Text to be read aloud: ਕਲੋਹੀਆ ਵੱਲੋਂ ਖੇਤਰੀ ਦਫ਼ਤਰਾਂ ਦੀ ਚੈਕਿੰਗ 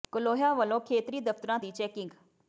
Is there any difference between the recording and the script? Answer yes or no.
no